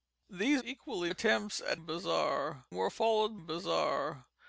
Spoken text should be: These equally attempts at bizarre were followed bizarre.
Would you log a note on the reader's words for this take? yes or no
no